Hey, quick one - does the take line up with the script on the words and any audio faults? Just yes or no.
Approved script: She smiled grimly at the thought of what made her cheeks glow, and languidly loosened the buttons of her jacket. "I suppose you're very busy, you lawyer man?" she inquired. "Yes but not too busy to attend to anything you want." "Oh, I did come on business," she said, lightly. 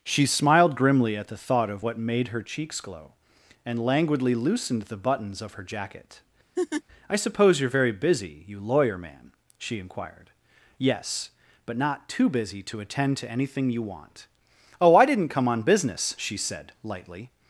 no